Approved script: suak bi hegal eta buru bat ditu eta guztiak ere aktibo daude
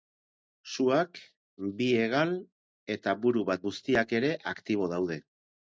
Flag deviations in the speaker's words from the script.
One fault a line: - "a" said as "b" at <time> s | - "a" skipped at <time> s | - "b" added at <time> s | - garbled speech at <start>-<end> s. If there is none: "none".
- "ditu eta" skipped at 3.6 s